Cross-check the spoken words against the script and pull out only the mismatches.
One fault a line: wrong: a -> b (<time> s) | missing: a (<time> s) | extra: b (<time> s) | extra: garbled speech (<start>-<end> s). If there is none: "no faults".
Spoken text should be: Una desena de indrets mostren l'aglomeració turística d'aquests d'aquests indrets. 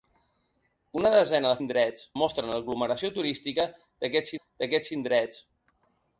no faults